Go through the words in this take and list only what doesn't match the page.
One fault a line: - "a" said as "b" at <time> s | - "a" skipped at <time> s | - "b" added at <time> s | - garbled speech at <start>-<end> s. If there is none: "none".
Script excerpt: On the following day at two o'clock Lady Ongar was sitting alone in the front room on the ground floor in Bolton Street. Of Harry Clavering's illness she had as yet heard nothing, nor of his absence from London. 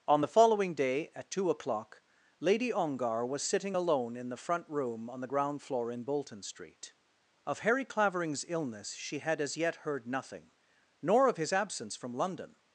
none